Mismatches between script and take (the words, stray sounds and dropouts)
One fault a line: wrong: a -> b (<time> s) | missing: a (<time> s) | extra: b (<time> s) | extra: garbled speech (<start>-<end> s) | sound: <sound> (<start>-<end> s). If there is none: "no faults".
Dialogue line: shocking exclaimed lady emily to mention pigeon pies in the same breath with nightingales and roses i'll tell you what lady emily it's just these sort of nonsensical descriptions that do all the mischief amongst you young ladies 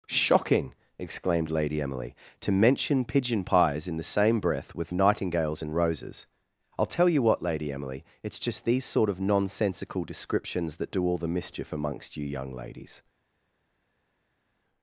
no faults